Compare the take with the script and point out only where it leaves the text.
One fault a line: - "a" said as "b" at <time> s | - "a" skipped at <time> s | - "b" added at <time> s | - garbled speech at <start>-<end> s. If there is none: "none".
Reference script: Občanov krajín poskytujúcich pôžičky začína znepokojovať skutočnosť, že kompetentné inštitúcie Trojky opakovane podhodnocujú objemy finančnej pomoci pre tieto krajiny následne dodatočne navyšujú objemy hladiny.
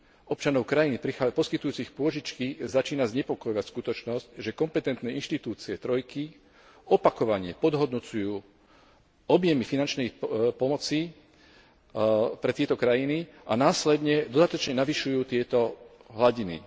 - "a" added at 13.4 s
- "objemy" said as "tieto" at 15.2 s